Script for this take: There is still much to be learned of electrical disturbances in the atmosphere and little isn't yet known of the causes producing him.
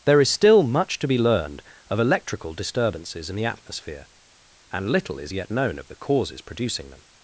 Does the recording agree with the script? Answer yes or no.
no